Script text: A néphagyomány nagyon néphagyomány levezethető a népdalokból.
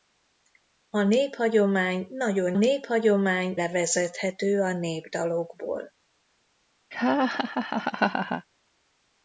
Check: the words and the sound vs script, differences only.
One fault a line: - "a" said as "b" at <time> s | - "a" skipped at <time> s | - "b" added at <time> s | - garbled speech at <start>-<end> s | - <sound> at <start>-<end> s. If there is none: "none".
- laugh at 6.9-8.5 s